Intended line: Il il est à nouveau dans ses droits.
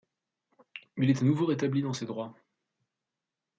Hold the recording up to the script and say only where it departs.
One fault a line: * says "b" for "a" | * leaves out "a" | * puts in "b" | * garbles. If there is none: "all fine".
* leaves out "il"
* puts in "rétabli"